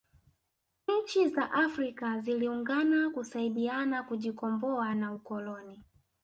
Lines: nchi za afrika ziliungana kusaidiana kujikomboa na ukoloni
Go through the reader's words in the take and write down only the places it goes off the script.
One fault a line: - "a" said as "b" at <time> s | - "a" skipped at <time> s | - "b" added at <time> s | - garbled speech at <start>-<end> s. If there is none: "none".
none